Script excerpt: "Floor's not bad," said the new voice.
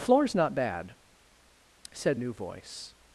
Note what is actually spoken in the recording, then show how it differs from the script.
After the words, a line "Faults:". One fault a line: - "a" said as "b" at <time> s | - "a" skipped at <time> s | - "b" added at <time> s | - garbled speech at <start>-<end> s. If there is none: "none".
"Floor's not bad," said new voice.
Faults:
- "the" skipped at 2.2 s